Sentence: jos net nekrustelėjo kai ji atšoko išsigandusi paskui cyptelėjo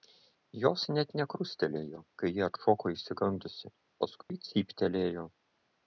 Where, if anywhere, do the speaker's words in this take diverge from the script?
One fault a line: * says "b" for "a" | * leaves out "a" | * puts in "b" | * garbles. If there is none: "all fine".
all fine